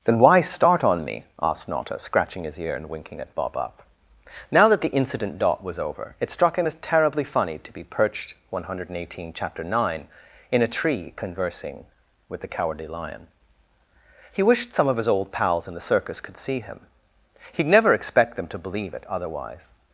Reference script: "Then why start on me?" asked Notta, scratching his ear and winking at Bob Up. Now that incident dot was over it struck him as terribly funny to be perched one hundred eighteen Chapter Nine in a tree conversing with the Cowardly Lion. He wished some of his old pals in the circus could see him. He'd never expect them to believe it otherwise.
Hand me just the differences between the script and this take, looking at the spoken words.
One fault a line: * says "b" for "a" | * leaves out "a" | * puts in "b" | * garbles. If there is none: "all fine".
* puts in "the"